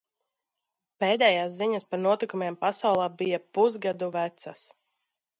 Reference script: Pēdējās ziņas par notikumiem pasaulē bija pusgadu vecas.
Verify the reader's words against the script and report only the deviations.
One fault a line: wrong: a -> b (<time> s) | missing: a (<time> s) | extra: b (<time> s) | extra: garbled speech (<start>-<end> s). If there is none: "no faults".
no faults